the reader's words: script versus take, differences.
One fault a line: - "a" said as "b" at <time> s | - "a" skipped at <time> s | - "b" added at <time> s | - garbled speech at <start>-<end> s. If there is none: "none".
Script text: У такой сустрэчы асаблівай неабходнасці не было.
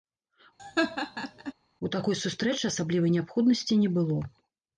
none